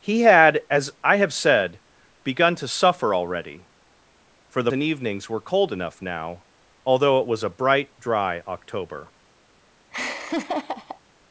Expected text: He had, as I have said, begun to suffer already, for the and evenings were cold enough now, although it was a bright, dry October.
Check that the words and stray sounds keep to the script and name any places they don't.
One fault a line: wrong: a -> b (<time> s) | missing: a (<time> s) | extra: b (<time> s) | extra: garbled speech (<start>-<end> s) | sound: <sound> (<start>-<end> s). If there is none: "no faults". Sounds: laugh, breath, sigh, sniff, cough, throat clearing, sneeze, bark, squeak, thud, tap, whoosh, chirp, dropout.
sound: laugh (9.9-11.0 s)